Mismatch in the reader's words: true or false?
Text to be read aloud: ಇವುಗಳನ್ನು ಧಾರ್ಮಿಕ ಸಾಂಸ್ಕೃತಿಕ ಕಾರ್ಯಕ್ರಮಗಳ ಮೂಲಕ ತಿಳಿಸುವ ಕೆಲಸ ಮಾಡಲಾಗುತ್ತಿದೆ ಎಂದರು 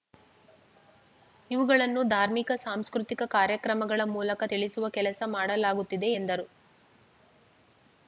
false